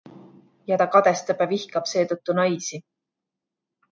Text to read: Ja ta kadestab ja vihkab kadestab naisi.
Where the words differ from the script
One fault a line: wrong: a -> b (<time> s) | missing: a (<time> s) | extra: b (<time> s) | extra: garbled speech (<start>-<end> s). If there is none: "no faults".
wrong: kadestab -> seetõttu (1.9 s)